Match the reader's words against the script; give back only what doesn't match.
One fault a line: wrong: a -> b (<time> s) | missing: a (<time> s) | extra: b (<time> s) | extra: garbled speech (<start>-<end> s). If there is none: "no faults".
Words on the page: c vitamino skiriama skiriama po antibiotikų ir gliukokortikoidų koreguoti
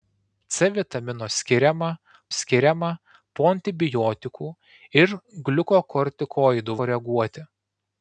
no faults